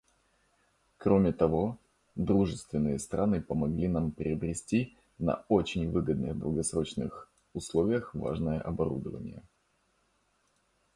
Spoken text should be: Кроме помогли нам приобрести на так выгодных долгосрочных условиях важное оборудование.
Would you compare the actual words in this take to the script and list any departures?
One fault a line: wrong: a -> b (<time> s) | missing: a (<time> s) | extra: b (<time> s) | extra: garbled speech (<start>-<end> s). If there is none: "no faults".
extra: того дружественные страны (1.3 s)
wrong: так -> очень (5.5 s)